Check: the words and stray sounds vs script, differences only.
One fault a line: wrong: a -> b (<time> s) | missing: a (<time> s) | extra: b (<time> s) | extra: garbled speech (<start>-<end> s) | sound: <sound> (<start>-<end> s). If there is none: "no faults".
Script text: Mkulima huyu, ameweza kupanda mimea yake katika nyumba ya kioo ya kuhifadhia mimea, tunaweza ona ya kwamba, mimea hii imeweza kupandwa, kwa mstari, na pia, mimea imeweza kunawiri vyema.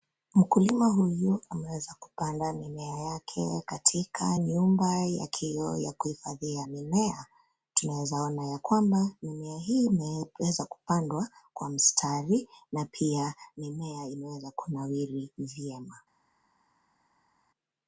no faults